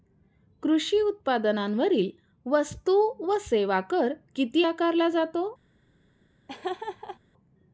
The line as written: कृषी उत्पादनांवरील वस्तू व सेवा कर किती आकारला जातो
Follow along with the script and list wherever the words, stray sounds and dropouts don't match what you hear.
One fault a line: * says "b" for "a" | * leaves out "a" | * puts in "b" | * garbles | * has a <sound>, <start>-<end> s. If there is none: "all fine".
* has a laugh, 6.5-7.2 s